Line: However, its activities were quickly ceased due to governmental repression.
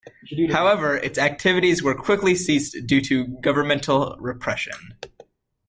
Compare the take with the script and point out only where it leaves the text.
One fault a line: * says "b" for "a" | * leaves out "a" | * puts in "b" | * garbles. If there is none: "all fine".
all fine